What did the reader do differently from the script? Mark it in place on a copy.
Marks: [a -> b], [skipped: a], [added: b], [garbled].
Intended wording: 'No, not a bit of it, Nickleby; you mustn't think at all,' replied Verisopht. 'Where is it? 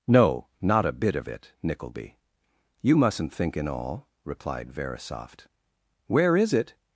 'No, not a bit of it, Nickleby; you mustn't think [at -> in] all,' replied Verisopht. 'Where is it?